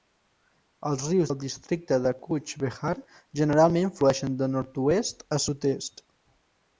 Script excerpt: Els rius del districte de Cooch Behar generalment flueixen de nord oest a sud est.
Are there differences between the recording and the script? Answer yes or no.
no